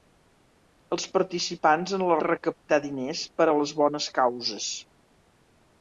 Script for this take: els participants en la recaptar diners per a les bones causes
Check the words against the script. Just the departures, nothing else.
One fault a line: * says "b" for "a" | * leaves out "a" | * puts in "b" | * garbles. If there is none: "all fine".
all fine